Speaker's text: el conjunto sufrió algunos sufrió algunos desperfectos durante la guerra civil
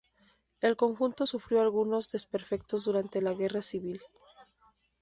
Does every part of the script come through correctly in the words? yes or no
no